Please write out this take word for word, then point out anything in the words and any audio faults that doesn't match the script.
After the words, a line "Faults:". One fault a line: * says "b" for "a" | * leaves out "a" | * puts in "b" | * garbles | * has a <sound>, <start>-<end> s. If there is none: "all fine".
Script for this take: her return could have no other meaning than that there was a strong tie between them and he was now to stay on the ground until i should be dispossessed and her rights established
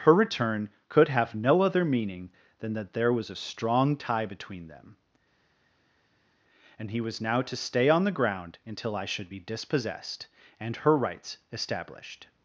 her return could have no other meaning than that there was a strong tie between them and he was now to stay on the ground until i should be dispossessed and her rights established
Faults:
all fine